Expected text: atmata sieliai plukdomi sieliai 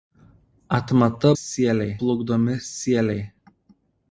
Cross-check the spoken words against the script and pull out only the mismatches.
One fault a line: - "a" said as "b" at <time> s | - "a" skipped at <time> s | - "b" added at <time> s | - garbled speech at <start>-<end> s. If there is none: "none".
none